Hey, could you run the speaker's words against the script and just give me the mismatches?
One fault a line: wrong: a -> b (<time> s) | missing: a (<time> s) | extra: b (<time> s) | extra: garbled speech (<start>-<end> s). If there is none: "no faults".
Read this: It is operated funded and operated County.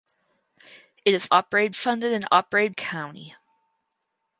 no faults